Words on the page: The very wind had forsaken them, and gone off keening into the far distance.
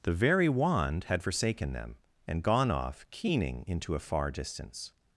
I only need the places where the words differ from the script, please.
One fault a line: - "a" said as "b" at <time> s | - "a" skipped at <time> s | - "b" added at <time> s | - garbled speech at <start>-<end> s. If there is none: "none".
- "wind" said as "wand" at 0.5 s
- "the" said as "a" at 3.9 s